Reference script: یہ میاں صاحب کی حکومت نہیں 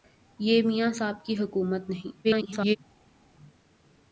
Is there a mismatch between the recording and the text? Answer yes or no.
yes